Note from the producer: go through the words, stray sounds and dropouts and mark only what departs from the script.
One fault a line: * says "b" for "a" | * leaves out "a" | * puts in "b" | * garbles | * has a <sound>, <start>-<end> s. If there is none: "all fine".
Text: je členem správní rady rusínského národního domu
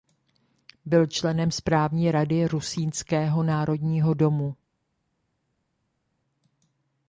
* says "byl" for "je"